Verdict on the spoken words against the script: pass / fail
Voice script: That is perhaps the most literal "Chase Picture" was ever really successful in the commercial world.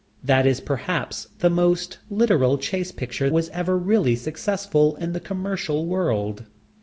pass